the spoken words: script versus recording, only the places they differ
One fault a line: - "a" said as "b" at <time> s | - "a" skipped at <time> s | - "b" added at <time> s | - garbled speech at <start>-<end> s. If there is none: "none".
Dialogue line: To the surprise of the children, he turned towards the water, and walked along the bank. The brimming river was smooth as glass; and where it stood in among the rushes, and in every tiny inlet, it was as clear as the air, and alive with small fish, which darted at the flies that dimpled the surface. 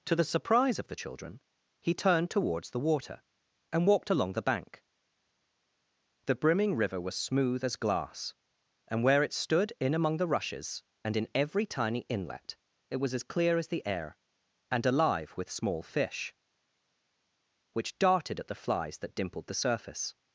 none